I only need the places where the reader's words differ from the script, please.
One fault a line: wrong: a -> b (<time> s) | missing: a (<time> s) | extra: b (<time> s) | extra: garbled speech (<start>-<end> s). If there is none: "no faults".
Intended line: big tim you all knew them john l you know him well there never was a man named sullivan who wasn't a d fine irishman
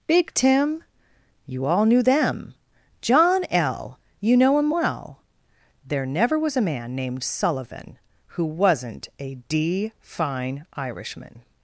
no faults